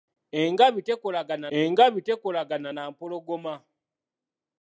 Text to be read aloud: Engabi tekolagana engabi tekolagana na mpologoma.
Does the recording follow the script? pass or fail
pass